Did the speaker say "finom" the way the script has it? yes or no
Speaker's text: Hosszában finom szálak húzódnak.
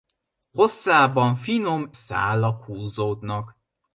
yes